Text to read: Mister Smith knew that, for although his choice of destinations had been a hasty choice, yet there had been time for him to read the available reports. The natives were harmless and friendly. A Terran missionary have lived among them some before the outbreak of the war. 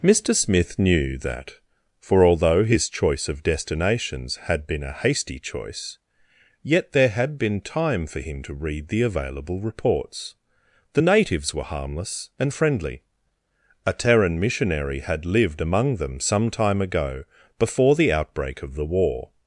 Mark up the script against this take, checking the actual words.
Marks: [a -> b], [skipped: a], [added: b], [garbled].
Mister Smith knew that, for although his choice of destinations had been a hasty choice, yet there had been time for him to read the available reports. The natives were harmless and friendly. A Terran missionary [have -> had] lived among them some [added: time ago] before the outbreak of the war.